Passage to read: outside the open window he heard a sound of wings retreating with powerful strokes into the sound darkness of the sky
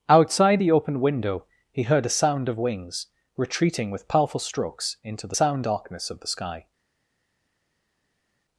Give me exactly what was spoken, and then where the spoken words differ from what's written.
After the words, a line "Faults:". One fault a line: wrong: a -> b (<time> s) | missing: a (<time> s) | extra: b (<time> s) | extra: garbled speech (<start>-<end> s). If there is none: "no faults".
outside the open window he heard a sound of wings retreating with powerful strokes into the sound darkness of the sky
Faults:
no faults